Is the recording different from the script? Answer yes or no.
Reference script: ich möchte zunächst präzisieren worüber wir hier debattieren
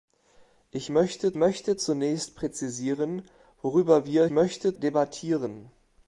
yes